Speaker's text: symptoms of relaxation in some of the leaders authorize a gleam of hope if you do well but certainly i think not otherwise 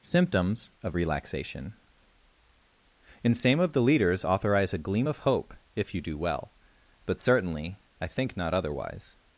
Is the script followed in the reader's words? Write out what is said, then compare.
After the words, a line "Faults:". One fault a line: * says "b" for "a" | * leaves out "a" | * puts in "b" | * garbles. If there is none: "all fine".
symptoms of relaxation in same of the leaders authorize a gleam of hope if you do well but certainly i think not otherwise
Faults:
* says "same" for "some"